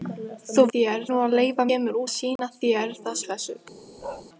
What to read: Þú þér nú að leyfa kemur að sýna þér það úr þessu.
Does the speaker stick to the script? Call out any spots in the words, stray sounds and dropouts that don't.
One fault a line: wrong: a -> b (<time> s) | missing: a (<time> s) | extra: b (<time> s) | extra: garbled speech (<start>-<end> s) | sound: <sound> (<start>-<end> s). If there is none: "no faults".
sound: dropout (2.4-2.4 s)
sound: bark (4.0-4.3 s)